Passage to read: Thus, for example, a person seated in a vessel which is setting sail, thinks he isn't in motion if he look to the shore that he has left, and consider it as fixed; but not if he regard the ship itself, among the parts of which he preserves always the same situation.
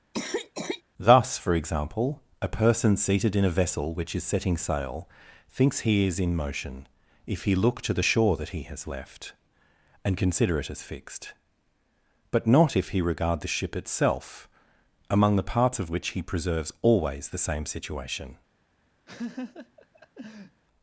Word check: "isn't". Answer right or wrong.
wrong